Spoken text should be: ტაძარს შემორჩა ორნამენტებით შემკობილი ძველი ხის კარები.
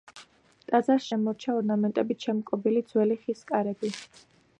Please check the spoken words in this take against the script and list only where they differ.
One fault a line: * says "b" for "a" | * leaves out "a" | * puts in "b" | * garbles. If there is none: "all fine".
all fine